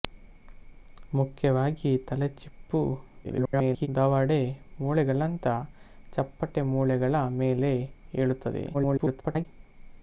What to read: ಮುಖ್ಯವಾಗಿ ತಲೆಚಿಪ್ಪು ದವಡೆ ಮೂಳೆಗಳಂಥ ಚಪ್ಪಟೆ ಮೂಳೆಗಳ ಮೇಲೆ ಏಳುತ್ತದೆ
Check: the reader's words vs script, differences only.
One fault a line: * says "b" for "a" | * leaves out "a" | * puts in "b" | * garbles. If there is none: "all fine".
* garbles
* garbles